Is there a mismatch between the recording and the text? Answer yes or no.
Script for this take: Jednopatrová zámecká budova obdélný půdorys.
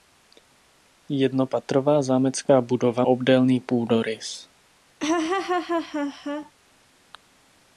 no